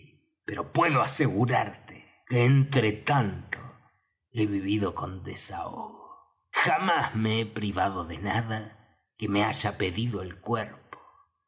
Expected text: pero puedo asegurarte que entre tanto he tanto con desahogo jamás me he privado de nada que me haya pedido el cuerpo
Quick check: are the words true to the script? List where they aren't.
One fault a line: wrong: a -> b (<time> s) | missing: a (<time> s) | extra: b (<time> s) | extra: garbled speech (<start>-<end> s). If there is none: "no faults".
wrong: tanto -> vivido (4.4 s)